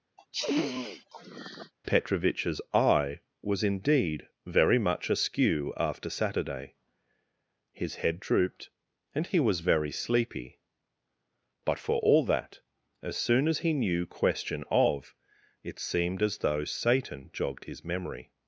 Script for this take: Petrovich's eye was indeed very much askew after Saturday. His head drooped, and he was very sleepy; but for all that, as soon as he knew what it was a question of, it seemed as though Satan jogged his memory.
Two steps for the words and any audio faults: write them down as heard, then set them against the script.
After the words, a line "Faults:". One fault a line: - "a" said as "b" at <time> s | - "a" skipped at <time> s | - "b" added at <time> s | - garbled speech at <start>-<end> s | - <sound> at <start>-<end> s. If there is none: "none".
Petrovich's eye was indeed very much askew after Saturday. His head drooped, and he was very sleepy; but for all that, as soon as he knew question of, it seemed as though Satan jogged his memory.
Faults:
- sniff at 0.2-1.7 s
- "what it was a" skipped at 14.1 s